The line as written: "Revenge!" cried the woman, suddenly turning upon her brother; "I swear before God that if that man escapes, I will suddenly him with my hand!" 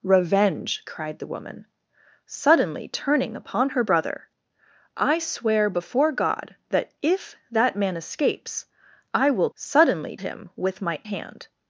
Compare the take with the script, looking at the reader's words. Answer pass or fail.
pass